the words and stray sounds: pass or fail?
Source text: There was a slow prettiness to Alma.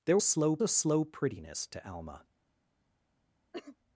fail